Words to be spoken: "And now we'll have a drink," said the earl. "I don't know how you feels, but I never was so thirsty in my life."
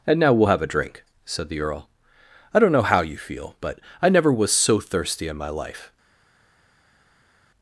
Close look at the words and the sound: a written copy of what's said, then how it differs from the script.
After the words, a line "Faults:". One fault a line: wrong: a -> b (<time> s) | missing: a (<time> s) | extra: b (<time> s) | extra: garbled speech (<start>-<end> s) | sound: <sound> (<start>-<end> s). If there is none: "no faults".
"And now we'll have a drink," said the earl. "I don't know how you feel, but I never was so thirsty in my life."
Faults:
wrong: feels -> feel (3.2 s)